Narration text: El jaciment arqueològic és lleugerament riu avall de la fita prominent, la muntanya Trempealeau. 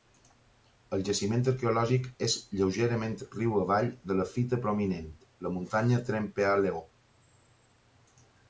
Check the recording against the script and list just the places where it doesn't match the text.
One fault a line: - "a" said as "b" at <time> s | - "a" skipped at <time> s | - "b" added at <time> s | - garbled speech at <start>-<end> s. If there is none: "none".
none